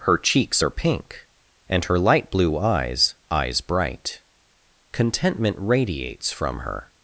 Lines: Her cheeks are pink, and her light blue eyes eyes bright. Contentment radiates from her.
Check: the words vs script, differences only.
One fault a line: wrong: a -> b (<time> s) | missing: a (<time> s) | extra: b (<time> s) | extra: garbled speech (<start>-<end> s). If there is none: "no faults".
no faults